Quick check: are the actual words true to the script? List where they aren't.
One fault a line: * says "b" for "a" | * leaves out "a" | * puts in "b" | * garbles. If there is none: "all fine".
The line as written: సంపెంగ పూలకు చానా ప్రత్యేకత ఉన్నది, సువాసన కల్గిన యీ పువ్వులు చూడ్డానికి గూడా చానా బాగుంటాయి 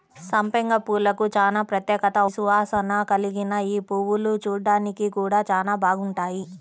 * leaves out "ఉన్నది"